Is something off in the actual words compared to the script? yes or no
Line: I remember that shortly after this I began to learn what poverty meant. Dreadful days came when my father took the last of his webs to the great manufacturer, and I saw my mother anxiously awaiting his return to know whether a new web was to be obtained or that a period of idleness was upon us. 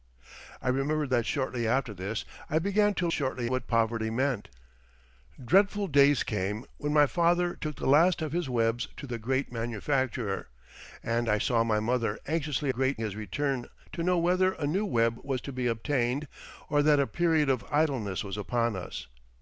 yes